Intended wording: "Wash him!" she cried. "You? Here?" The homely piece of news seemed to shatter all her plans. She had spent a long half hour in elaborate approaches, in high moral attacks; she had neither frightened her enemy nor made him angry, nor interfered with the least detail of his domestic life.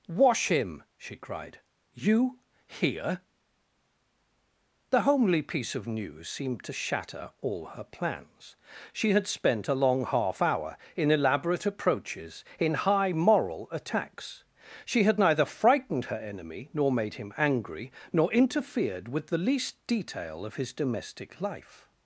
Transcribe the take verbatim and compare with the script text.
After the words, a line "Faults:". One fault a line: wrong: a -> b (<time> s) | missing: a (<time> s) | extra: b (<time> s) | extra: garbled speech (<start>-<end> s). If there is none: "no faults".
"Wash him!" she cried. "You? Here?" The homely piece of news seemed to shatter all her plans. She had spent a long half hour in elaborate approaches, in high moral attacks; she had neither frightened her enemy nor made him angry, nor interfered with the least detail of his domestic life.
Faults:
no faults